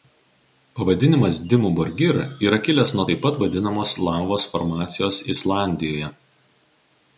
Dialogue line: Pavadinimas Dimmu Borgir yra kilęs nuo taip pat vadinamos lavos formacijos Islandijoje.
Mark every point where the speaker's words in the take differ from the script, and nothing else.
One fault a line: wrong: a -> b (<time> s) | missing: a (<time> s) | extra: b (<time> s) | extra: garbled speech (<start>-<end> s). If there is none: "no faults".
no faults